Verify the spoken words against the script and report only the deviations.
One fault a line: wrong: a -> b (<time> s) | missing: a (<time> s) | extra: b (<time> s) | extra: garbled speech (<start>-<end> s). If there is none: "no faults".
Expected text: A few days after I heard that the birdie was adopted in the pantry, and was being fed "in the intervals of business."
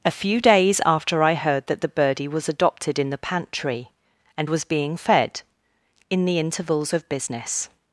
no faults